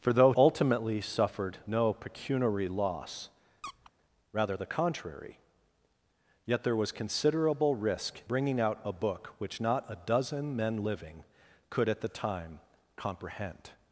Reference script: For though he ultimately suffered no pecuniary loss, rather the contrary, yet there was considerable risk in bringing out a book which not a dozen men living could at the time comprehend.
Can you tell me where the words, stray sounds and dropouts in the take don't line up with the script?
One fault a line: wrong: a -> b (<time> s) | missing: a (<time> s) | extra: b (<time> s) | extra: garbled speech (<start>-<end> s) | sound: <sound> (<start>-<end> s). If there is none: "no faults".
missing: he (0.3 s)
sound: squeak (3.6-3.9 s)
missing: in (8.2 s)